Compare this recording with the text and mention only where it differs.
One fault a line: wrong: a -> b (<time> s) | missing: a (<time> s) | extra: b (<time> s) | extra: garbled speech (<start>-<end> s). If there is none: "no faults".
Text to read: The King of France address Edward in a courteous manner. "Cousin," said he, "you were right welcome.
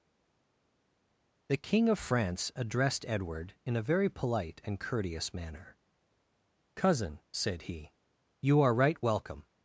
wrong: address -> addressed (2.5 s)
extra: very polite and (3.8 s)
wrong: were -> are (8.6 s)